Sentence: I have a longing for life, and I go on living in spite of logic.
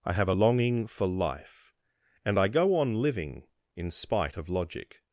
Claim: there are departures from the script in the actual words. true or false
false